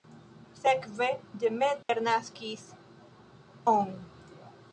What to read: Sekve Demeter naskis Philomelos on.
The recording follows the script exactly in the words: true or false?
false